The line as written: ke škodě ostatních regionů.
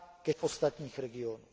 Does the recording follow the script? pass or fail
fail